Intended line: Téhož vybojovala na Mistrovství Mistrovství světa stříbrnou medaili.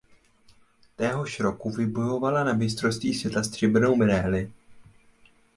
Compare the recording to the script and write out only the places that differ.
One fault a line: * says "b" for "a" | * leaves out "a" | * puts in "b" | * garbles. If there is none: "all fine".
* puts in "roku"
* leaves out "Mistrovství"